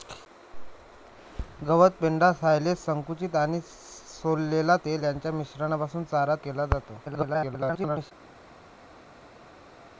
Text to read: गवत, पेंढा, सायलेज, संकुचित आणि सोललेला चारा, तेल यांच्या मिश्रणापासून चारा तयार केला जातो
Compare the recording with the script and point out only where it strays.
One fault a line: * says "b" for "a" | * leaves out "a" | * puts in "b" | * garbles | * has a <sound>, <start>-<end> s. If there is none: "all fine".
* leaves out "चारा"
* leaves out "तयार"
* garbles